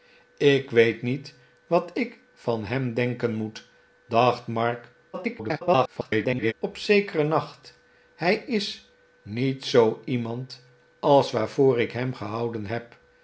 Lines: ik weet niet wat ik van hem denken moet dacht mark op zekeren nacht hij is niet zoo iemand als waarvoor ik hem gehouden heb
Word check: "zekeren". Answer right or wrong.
right